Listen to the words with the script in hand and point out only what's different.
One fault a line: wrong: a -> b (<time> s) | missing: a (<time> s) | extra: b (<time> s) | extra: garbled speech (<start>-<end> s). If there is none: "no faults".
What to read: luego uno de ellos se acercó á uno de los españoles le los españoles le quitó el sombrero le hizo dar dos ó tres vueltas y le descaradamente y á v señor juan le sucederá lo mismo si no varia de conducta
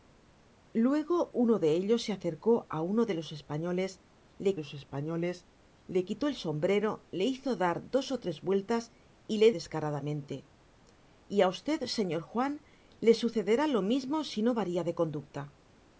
no faults